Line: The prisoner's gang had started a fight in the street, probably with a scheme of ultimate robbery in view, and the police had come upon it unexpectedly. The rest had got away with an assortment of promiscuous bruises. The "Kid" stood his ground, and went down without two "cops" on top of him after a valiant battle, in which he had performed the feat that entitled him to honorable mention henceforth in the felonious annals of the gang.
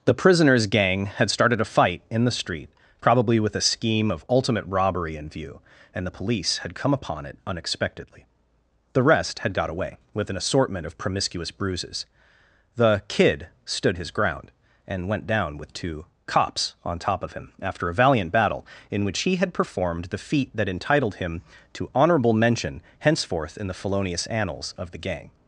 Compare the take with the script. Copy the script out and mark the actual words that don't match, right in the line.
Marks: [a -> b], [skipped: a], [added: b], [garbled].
The prisoner's gang had started a fight in the street, probably with a scheme of ultimate robbery in view, and the police had come upon it unexpectedly. The rest had got away with an assortment of promiscuous bruises. The "Kid" stood his ground, and went down [without -> with] two "cops" on top of him after a valiant battle, in which he had performed the feat that entitled him to honorable mention henceforth in the felonious annals of the gang.